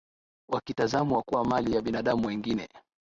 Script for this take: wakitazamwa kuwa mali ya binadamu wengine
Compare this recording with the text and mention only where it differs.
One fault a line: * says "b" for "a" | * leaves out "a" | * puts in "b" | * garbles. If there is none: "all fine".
all fine